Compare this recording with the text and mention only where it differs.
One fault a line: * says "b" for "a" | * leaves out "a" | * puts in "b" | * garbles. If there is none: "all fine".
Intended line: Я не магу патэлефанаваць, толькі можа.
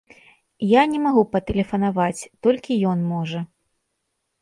* puts in "ён"